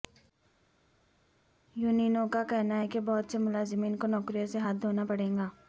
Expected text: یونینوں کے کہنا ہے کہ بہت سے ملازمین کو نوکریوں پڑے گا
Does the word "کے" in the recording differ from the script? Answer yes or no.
yes